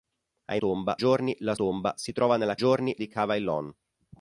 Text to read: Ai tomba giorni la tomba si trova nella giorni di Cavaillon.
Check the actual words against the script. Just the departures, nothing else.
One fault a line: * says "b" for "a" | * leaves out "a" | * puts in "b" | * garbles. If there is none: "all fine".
all fine